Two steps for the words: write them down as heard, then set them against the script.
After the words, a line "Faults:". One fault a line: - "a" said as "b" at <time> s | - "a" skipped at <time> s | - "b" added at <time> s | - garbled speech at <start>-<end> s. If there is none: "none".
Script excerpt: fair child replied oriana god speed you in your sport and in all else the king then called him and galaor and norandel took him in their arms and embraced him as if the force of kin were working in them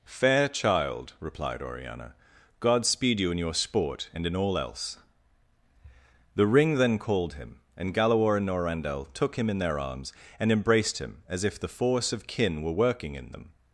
fair child replied oriana god speed you in your sport and in all else the ring then called him and galaor and norandel took him in their arms and embraced him as if the force of kin were working in them
Faults:
- "king" said as "ring" at 6.5 s